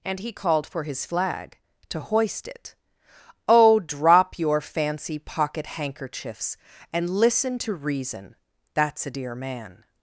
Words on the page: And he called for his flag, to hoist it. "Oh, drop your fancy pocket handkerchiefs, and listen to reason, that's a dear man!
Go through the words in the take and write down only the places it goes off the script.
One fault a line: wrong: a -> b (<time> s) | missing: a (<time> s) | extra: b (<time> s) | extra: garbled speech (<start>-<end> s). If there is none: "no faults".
no faults